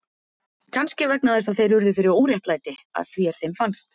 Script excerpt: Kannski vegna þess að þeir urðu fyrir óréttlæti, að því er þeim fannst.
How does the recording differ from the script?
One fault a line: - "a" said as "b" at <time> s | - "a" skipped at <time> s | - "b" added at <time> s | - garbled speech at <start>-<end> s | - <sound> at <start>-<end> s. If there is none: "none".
none